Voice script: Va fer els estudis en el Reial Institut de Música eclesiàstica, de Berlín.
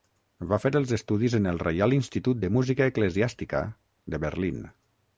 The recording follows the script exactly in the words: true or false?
true